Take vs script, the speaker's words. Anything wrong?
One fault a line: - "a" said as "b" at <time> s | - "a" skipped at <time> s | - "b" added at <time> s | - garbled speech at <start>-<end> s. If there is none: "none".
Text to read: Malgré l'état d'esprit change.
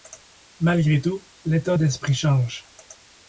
- "tout" added at 1.0 s